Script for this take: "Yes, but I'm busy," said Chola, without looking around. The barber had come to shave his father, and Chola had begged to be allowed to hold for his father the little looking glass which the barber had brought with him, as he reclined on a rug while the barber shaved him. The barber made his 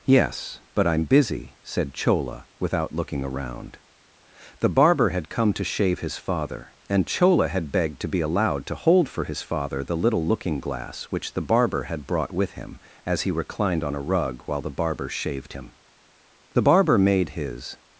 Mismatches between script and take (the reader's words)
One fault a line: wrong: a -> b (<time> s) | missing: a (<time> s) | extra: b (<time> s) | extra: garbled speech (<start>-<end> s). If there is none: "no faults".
no faults